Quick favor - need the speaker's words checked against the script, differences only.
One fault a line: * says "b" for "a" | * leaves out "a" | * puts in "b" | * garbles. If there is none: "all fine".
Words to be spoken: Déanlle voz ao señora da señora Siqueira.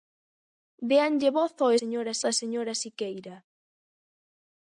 all fine